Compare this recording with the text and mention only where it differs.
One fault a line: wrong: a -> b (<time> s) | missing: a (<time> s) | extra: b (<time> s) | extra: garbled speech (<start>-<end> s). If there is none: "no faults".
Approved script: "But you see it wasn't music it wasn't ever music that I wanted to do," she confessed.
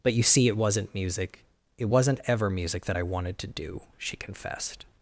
no faults